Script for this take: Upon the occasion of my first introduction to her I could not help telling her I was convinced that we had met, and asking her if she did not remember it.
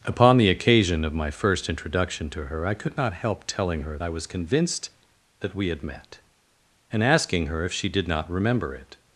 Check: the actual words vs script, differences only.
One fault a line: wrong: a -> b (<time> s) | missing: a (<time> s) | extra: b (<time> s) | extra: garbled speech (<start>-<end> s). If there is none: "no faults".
no faults